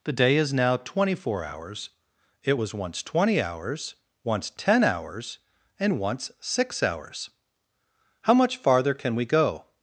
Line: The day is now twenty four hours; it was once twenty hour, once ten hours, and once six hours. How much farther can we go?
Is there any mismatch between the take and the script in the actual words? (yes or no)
yes